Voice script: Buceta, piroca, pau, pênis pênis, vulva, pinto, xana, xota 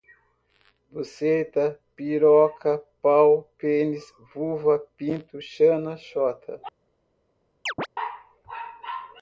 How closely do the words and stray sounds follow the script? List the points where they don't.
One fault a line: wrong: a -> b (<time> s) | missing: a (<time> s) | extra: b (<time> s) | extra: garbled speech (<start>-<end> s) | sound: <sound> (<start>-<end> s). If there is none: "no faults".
missing: pênis (4.1 s)
sound: chirp (7.7-7.9 s)